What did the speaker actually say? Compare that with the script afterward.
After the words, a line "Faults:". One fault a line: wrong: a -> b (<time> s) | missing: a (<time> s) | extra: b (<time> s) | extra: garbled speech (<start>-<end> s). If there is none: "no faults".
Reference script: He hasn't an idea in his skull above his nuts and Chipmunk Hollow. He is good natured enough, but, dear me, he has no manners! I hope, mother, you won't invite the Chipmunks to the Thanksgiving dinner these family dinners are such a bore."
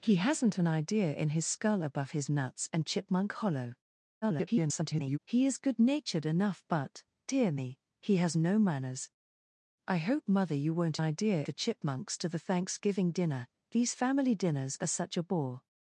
He hasn't an idea in his skull above his nuts and Chipmunk Hollow. [garbled] He is good natured enough, but, dear me, he has no manners! I hope, mother, you won't idea the Chipmunks to the Thanksgiving dinner these family dinners are such a bore."
Faults:
extra: garbled speech (4.2-5.2 s)
wrong: invite -> idea (11.0 s)